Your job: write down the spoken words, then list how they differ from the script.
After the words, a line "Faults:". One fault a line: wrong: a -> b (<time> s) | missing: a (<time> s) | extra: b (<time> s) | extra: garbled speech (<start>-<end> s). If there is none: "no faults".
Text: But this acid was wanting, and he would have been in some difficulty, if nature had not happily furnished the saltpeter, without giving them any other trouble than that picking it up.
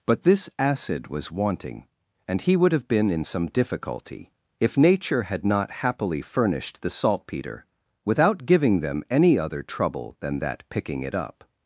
But this acid was wanting, and he would have been in some difficulty, if nature had not happily furnished the saltpeter, without giving them any other trouble than that picking it up.
Faults:
no faults